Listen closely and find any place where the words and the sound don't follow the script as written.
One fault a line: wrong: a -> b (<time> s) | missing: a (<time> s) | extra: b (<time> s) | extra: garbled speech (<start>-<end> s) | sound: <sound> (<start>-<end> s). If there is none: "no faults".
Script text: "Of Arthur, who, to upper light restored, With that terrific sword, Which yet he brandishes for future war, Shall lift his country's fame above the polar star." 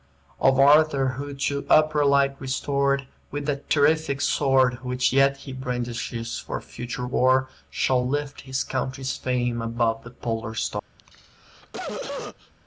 sound: cough (11.0-12.5 s)